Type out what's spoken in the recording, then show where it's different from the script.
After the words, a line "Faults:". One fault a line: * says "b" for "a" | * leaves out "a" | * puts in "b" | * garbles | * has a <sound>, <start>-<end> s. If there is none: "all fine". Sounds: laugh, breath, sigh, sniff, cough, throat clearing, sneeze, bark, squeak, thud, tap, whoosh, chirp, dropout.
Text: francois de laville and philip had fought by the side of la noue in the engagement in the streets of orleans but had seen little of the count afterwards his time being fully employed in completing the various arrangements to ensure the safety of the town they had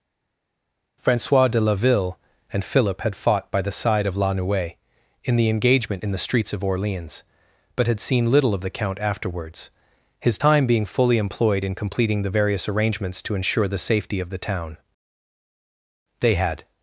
francois de laville and philip had fought by the side of la noue in the engagement in the streets of orleans but had seen little of the count afterwards his time being fully employed in completing the various arrangements to ensure the safety of the town they had
Faults:
all fine